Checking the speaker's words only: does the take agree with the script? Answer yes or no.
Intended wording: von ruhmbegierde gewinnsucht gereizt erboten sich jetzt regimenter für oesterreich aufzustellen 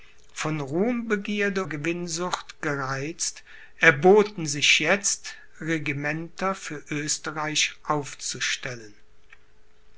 yes